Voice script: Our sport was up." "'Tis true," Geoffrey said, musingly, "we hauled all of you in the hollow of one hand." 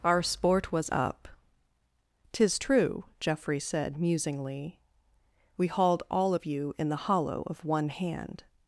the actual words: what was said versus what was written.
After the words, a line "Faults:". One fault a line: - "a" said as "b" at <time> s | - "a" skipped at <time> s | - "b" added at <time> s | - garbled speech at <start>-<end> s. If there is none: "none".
Our sport was up." "'Tis true," Geoffrey said, musingly, "we hauled all of you in the hollow of one hand."
Faults:
none